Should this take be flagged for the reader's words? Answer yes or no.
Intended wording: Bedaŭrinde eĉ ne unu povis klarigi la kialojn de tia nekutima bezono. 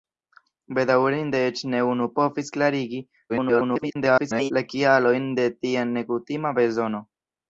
yes